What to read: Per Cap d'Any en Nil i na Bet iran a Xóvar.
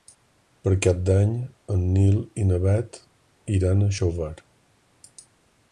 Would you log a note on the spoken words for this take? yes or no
no